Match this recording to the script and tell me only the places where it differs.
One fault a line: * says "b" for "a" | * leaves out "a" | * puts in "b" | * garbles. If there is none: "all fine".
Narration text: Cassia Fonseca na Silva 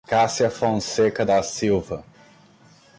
* says "da" for "na"